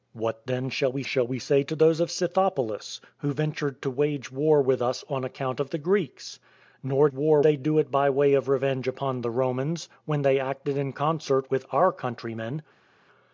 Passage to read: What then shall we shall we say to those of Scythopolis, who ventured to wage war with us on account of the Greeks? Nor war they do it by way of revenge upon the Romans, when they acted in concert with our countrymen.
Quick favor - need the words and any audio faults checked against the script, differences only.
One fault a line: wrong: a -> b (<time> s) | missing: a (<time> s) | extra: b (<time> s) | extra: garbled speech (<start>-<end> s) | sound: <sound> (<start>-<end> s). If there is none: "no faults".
no faults